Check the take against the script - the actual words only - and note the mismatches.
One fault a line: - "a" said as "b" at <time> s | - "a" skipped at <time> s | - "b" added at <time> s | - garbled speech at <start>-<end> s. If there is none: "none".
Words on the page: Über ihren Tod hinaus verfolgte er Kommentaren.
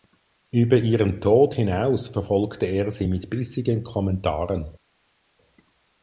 - "sie mit bissigen" added at 2.9 s